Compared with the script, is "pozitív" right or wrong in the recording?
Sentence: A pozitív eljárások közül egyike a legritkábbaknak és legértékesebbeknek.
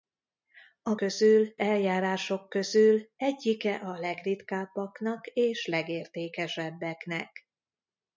wrong